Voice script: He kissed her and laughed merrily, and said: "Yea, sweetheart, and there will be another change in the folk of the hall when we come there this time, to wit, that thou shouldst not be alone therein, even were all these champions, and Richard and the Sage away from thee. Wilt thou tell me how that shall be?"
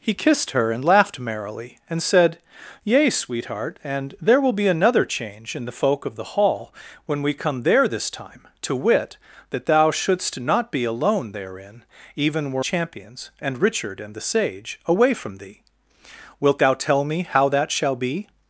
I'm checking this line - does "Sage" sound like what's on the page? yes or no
yes